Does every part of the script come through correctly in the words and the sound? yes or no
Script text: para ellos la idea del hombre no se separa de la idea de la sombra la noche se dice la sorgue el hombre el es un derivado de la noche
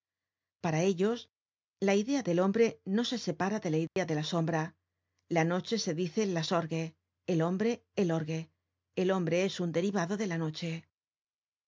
no